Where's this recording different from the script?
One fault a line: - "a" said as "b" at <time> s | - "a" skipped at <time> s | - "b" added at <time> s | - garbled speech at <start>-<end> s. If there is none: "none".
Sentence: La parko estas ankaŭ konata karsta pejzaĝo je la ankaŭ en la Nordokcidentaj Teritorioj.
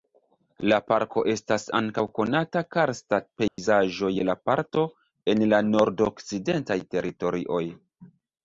- "ankaŭ" said as "parto" at 4.5 s